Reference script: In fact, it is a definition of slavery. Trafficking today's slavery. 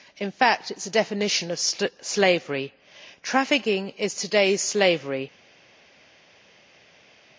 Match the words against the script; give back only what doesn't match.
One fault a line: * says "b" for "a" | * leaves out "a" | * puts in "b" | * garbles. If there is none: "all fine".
* puts in "is"